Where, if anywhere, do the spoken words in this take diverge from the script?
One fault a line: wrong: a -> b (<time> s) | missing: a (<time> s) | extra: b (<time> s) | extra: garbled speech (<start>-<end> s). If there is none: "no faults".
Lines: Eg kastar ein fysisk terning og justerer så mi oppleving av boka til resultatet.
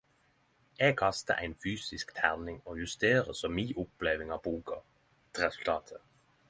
no faults